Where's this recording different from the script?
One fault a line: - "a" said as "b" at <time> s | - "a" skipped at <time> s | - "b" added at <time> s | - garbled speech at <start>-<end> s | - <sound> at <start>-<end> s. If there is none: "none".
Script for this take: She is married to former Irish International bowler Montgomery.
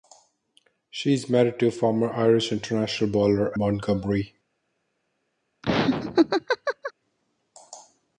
- laugh at 5.6-6.9 s